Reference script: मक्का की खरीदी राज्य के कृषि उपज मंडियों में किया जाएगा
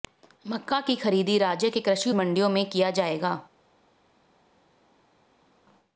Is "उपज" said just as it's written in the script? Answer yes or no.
no